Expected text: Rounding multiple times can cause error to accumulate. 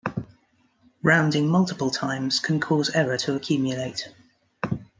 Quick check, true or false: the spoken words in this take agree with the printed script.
true